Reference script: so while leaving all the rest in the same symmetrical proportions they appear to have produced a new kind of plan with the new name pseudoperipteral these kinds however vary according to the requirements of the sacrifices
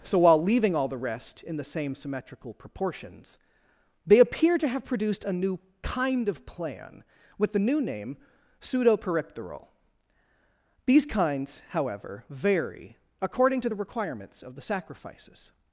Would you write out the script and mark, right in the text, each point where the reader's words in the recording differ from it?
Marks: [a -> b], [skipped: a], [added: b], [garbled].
so while leaving all the rest in the same symmetrical proportions they appear to have produced a new kind of plan with the new name pseudoperipteral these kinds however vary according to the requirements of the sacrifices